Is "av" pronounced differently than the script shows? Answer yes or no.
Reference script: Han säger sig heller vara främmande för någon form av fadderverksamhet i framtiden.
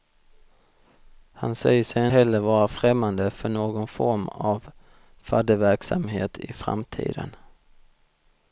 no